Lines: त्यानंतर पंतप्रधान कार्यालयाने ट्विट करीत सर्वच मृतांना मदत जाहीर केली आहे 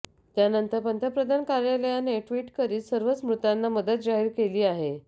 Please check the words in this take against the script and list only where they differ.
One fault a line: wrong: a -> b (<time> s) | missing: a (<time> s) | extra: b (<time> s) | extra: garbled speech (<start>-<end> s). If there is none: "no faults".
no faults